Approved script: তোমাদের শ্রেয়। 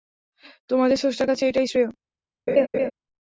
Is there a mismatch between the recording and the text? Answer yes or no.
yes